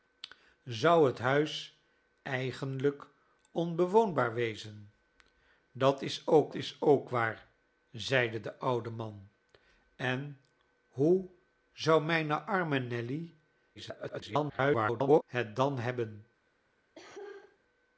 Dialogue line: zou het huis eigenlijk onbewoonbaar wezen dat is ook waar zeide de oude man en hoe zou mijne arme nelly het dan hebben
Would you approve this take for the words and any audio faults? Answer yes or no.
no